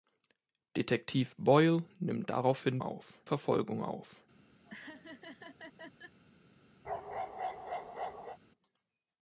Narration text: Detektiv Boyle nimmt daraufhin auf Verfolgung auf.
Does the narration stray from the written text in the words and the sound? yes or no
yes